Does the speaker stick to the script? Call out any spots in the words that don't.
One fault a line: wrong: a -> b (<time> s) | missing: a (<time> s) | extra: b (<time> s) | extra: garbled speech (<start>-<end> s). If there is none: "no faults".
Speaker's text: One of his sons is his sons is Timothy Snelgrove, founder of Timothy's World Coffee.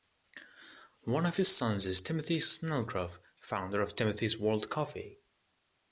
missing: his sons is (2.0 s)